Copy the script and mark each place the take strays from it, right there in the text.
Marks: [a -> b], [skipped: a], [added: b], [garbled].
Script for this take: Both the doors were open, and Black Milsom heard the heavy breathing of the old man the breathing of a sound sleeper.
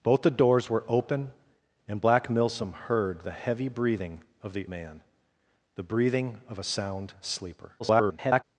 Both the doors were open, and Black Milsom heard the heavy breathing of the [skipped: old] man the breathing of a sound sleeper. [garbled]